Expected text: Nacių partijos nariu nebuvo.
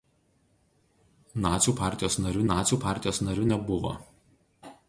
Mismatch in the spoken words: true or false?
true